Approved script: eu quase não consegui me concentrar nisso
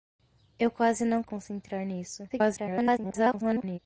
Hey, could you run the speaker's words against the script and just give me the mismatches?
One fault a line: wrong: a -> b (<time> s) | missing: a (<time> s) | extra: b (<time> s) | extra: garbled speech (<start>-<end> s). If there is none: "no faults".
missing: consegui me (1.2 s)
extra: garbled speech (2.3-3.8 s)